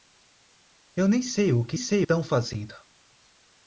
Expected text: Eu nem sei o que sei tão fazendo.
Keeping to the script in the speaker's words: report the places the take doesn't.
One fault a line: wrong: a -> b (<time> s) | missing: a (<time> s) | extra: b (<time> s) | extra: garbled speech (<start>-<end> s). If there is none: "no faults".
no faults